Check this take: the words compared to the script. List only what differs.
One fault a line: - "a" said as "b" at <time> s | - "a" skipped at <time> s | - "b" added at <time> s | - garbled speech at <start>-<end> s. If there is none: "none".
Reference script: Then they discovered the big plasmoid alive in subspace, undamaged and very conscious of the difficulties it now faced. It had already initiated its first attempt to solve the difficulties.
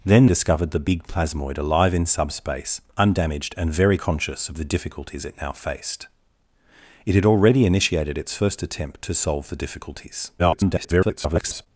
- "they" skipped at 0.2 s
- garbled speech at 10.4-11.7 s